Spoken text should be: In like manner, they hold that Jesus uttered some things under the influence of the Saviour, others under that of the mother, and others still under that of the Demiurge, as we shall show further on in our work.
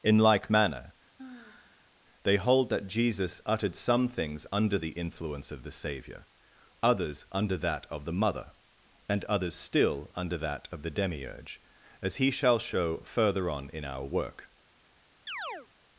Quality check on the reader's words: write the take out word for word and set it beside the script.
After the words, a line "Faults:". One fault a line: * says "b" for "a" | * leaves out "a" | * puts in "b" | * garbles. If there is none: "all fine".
In like manner, they hold that Jesus uttered some things under the influence of the Saviour, others under that of the mother, and others still under that of the Demiurge, as he shall show further on in our work.
Faults:
* says "he" for "we"